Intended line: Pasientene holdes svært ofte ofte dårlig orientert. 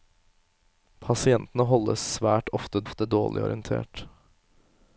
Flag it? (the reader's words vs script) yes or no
no